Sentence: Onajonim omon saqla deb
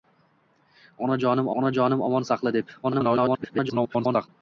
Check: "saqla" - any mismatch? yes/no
no